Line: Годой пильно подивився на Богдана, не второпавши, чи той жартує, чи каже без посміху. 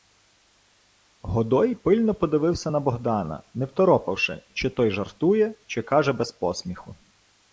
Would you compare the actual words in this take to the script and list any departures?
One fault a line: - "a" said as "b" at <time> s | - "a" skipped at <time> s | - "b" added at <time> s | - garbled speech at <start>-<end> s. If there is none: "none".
none